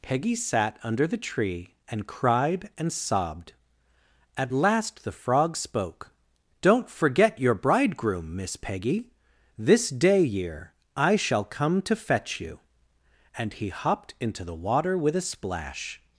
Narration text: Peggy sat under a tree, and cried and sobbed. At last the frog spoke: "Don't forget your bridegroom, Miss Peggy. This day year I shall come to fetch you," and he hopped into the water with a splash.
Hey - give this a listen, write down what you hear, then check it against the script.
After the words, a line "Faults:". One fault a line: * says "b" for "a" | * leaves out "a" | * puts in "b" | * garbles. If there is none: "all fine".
Peggy sat under the tree, and cried and sobbed. At last the frog spoke: "Don't forget your bridegroom, Miss Peggy. This day year I shall come to fetch you," and he hopped into the water with a splash.
Faults:
* says "the" for "a"